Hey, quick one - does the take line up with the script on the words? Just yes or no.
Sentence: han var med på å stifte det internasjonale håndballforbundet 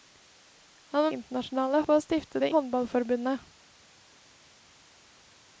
no